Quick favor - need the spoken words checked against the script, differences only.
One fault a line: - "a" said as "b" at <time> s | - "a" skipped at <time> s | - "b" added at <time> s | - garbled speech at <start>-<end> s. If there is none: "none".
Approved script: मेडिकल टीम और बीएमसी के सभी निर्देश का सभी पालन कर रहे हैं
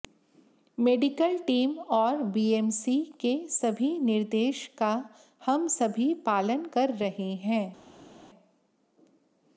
- "हम" added at 5.5 s